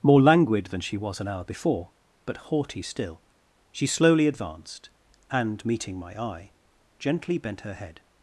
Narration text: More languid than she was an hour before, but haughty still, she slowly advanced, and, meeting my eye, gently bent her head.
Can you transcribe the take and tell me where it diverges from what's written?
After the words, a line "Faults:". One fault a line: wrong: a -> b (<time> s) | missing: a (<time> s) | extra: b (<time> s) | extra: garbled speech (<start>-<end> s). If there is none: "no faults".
More languid than she was an hour before, but haughty still, she slowly advanced, and, meeting my eye, gently bent her head.
Faults:
no faults